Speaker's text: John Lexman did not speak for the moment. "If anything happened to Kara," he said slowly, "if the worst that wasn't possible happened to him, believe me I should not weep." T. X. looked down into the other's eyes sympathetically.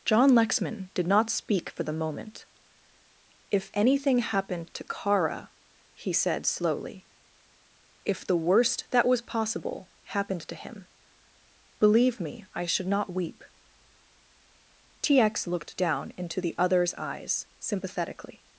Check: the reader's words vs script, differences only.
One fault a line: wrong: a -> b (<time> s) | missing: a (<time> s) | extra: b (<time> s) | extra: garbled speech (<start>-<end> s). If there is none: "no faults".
wrong: wasn't -> was (9.1 s)